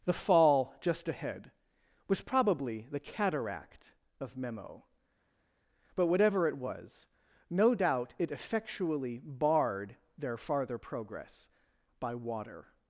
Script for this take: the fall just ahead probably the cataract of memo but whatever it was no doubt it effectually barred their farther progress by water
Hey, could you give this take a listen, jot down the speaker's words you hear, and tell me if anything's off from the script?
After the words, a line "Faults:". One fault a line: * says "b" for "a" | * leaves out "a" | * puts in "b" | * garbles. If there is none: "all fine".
the fall just ahead was probably the cataract of memo but whatever it was no doubt it effectually barred their farther progress by water
Faults:
* puts in "was"